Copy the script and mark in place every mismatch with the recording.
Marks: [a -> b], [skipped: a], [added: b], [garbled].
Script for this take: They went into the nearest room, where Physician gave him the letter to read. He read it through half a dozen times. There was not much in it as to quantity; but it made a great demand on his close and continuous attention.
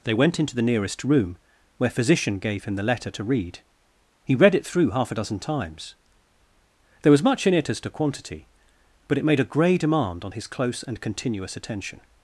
They went into the nearest room, where Physician gave him the letter to read. He read it through half a dozen times. There was [skipped: not] much in it as to quantity; but it made a [great -> grey] demand on his close and continuous attention.